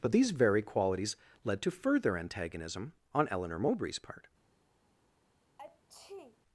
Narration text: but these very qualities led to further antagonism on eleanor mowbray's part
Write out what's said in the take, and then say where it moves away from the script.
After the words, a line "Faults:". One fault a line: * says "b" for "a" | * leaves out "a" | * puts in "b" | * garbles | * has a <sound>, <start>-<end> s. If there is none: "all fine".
but these very qualities led to further antagonism on eleanor mowbray's part
Faults:
* has a sneeze, 5.6-6.4 s